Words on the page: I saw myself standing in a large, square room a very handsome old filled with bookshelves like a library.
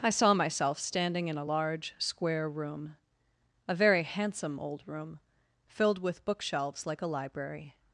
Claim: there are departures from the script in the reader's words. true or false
true